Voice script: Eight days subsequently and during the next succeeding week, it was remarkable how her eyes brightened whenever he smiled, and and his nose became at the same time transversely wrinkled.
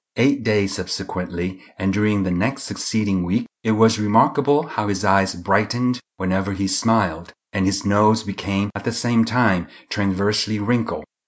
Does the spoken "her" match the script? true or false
false